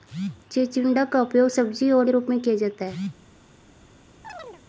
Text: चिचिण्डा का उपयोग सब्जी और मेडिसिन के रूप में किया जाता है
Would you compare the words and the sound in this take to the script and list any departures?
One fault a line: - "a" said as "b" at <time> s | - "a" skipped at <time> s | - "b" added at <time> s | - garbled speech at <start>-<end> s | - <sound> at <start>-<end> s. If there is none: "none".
- "मेडिसिन" skipped at 2.1 s
- chirp at 4.2-4.6 s